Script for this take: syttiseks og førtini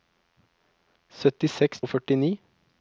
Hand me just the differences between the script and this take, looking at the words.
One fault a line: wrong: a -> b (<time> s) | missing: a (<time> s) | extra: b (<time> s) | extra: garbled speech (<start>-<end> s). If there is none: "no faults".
no faults